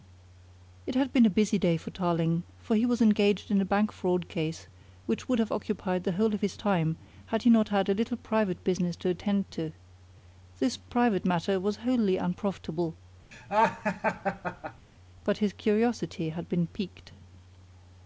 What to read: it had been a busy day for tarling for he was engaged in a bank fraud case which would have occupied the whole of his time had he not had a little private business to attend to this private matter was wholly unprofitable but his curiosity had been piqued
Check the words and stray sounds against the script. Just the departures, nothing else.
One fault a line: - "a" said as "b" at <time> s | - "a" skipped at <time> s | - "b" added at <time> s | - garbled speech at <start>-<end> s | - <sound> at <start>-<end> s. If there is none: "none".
- laugh at 13.3-14.9 s